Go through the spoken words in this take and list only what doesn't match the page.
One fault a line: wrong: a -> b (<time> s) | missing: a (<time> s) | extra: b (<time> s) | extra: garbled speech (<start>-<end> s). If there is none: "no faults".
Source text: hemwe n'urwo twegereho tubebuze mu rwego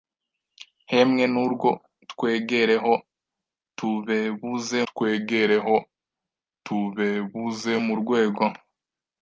extra: twegereho tubebuze (4.9 s)